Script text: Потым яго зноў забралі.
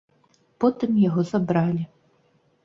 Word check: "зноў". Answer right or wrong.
wrong